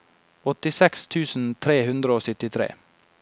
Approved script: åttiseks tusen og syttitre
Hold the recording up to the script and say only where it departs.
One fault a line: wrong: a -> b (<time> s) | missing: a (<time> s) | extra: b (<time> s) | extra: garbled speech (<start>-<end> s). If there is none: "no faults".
extra: tre hundre (1.7 s)